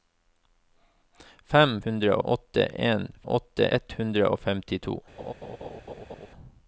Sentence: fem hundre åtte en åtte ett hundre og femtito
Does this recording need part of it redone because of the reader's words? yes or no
no